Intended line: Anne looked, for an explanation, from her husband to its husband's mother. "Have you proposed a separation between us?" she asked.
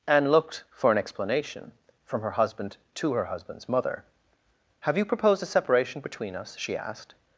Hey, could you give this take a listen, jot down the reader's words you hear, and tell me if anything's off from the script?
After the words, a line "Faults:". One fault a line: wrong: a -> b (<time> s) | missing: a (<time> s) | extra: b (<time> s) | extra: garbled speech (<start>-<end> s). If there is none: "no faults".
Anne looked, for an explanation, from her husband to her husband's mother. "Have you proposed a separation between us?" she asked.
Faults:
wrong: its -> her (3.1 s)